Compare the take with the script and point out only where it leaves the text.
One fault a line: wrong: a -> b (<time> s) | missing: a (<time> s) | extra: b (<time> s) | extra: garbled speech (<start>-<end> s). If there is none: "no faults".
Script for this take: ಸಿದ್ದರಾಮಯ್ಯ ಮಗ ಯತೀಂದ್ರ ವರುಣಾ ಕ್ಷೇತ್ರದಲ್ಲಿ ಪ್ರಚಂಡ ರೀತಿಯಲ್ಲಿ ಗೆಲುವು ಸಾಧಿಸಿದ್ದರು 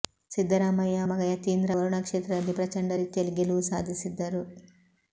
no faults